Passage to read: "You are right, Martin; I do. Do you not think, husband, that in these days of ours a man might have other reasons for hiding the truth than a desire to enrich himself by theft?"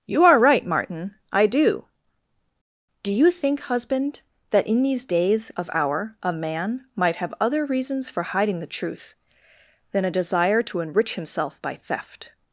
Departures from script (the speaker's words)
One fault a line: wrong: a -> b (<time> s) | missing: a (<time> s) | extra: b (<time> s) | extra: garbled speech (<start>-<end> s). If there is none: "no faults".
missing: not (3.3 s)
wrong: ours -> our (5.7 s)